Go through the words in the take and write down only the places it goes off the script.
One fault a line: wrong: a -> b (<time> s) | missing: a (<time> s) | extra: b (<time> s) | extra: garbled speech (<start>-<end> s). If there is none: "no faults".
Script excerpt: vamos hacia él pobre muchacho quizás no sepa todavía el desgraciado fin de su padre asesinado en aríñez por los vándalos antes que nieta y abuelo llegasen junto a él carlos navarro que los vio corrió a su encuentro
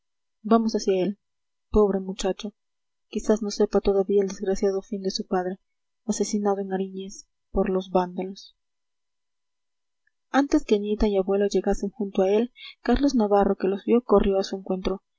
no faults